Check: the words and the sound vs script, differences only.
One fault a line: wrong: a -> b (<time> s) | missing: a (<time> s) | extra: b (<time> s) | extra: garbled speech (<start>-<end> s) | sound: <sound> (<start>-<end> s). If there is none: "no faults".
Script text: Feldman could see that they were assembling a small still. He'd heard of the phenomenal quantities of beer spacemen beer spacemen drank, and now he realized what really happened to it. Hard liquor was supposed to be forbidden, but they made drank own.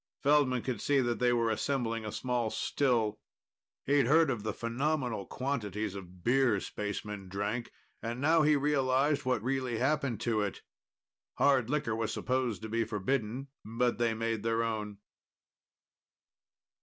missing: beer spacemen (7.3 s)
wrong: drank -> their (14.4 s)